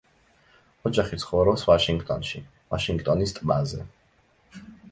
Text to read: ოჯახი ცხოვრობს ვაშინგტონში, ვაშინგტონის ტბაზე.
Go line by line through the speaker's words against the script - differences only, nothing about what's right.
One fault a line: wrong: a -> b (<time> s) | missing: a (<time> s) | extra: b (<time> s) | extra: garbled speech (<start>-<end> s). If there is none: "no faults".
no faults